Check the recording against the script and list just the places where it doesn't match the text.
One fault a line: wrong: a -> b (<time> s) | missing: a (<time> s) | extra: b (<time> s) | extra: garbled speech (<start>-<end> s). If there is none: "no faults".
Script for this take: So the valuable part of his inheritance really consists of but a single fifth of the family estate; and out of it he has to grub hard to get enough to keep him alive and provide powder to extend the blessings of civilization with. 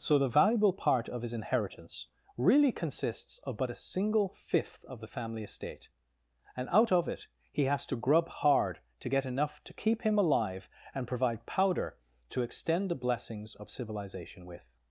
no faults